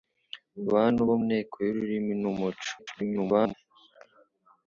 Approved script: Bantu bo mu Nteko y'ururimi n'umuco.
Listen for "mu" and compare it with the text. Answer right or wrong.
wrong